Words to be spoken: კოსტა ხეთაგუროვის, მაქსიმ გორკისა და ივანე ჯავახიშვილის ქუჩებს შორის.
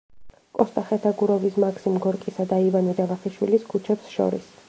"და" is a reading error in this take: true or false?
false